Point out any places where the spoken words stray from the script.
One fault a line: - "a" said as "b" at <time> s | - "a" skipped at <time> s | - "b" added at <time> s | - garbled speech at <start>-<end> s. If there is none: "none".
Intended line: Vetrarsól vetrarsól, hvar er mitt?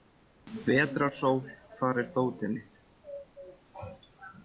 - "vetrarsól" skipped at 1.4 s
- "dótið" added at 2.2 s